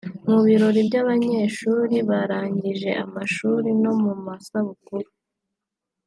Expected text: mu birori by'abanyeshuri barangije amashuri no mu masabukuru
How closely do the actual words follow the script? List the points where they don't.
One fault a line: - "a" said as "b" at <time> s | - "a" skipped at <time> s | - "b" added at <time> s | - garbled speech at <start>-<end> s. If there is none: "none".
none